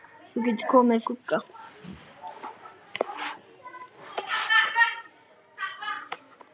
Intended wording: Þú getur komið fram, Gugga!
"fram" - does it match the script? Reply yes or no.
no